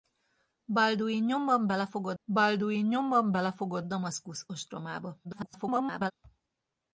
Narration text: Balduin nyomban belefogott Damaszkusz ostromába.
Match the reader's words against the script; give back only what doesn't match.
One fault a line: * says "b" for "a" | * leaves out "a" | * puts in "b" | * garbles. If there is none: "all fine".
* puts in "balduin nyomban belefogott"
* garbles